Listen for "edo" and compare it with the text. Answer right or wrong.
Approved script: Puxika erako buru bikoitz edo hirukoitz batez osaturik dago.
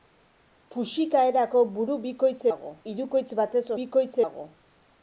wrong